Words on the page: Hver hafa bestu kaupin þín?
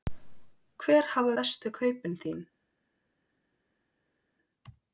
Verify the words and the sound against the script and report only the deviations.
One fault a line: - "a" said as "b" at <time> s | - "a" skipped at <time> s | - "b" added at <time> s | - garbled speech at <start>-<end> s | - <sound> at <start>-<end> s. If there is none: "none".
none